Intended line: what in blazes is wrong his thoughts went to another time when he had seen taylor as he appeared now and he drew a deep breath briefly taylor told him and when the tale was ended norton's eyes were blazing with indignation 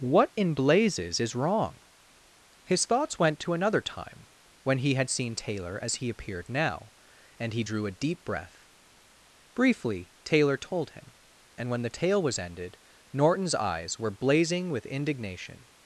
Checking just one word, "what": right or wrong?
right